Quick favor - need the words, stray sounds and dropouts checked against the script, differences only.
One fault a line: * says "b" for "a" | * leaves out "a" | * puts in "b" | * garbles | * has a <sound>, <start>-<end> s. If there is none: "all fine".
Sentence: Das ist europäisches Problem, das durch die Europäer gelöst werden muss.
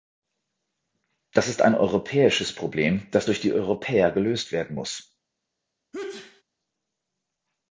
* puts in "ein"
* has a sneeze, 5.9-6.4 s